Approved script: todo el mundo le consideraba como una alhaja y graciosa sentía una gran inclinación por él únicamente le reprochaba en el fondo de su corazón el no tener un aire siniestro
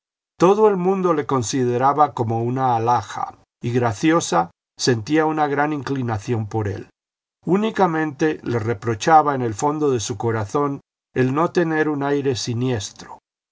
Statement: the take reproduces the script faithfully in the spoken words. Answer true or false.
true